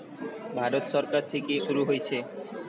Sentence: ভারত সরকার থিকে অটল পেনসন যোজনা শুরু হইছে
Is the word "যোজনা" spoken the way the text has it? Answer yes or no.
no